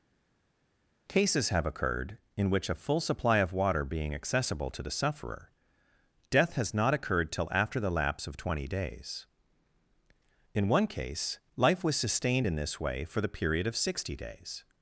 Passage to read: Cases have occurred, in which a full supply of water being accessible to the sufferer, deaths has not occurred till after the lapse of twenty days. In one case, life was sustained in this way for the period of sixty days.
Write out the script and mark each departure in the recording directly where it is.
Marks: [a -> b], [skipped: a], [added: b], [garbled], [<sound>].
Cases have occurred, in which a full supply of water being accessible to the sufferer, [deaths -> death] has not occurred till after the lapse of twenty days. In one case, life was sustained in this way for the period of sixty days.